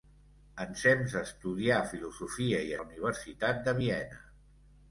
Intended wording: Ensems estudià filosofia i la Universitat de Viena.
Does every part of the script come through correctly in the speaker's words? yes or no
yes